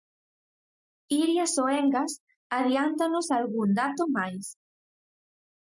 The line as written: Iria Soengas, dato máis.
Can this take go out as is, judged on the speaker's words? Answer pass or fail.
fail